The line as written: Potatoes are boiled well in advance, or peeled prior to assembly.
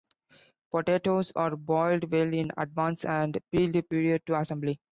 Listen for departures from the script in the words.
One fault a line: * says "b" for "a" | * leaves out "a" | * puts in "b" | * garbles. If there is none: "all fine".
* says "and" for "or"